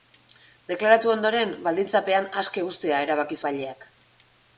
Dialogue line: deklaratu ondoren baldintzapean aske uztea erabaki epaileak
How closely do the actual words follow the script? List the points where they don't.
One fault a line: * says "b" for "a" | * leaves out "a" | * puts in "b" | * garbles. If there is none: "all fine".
all fine